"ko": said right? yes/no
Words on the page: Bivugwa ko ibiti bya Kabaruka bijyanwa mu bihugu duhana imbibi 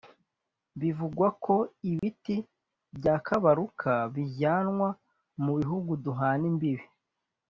yes